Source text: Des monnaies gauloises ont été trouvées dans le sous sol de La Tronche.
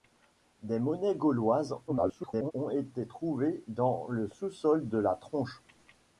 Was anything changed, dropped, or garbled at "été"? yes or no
no